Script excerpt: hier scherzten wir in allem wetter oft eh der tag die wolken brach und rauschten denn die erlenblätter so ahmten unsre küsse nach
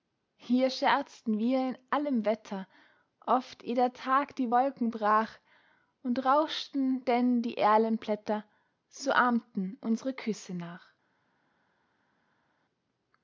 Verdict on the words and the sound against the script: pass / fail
pass